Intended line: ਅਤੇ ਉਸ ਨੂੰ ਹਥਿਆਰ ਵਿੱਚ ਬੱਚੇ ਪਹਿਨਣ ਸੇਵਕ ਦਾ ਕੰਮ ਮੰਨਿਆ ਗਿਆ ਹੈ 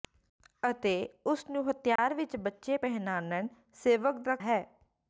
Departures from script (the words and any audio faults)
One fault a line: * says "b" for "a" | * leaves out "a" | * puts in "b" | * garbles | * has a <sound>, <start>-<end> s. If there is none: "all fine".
* has a dropout, 2.0-2.0 s
* leaves out "ਕੰਮ ਮੰਨਿਆ ਗਿਆ"